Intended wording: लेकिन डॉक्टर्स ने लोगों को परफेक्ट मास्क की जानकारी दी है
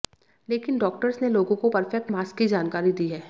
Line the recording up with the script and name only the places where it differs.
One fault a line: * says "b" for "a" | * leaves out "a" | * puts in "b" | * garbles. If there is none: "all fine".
all fine